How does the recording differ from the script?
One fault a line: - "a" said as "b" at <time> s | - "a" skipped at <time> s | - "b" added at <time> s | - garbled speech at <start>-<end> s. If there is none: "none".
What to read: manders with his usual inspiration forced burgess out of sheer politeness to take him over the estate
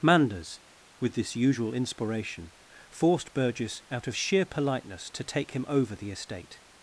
- "his" said as "this" at 1.1 s